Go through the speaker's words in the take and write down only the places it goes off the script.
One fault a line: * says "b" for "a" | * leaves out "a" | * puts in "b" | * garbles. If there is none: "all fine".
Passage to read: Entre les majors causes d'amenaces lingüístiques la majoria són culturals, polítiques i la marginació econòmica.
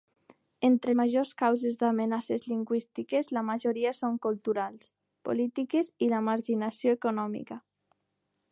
* leaves out "les"